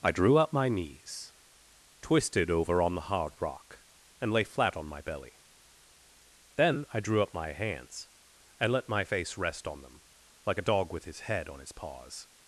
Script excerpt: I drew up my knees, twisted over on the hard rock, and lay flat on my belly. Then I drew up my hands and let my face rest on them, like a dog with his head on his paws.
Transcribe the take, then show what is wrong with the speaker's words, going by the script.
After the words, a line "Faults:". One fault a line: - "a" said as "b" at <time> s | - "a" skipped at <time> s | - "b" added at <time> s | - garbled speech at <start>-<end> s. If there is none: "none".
I drew up my knees, twisted over on the hard rock, and lay flat on my belly. Then I drew up my hands and let my face rest on them, like a dog with his head on his paws.
Faults:
none